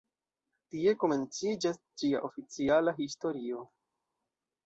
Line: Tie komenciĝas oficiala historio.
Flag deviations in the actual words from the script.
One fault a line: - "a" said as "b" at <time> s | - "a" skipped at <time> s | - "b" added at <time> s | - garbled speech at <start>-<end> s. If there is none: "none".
- "ĝia" added at 2.0 s